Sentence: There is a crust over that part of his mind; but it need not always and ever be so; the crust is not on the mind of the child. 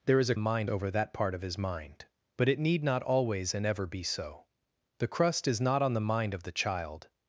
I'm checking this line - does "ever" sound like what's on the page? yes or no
yes